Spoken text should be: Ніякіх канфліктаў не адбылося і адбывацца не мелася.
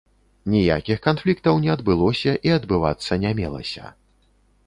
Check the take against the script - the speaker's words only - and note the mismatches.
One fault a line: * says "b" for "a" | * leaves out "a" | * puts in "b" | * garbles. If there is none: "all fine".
all fine